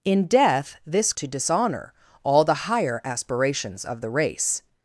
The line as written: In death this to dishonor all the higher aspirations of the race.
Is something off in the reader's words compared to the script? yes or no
no